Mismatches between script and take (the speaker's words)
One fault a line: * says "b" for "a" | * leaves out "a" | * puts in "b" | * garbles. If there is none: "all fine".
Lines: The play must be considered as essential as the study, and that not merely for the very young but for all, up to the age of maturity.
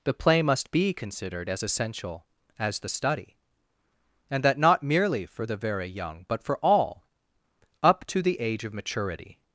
all fine